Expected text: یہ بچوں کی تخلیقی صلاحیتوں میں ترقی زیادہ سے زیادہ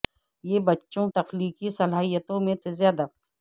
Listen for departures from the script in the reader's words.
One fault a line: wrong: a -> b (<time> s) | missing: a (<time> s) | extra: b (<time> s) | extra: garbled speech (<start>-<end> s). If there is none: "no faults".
missing: کی (1.1 s)
missing: ترقی زیادہ (2.5 s)